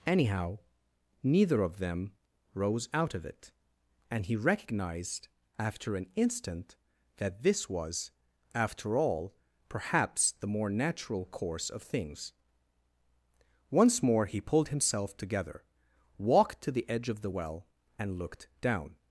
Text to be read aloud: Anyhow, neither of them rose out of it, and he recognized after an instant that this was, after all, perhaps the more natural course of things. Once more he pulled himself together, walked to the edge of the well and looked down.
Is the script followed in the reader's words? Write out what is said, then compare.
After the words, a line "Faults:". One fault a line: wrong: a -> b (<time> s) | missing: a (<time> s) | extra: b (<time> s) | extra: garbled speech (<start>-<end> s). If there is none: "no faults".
Anyhow, neither of them rose out of it, and he recognized after an instant that this was, after all, perhaps the more natural course of things. Once more he pulled himself together, walked to the edge of the well and looked down.
Faults:
no faults